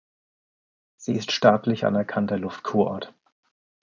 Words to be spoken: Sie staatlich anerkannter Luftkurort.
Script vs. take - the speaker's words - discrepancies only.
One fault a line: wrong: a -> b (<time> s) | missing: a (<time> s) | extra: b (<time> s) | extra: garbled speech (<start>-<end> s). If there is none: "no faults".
extra: ist (1.1 s)